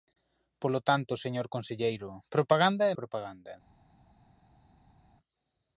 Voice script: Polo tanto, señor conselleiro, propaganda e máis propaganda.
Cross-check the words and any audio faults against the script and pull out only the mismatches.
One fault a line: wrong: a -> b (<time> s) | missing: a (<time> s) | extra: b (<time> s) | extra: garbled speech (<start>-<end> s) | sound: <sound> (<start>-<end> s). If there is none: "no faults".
missing: máis (3.0 s)